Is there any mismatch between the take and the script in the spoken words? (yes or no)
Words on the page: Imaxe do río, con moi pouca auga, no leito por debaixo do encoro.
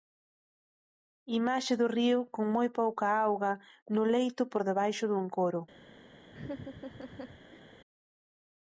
no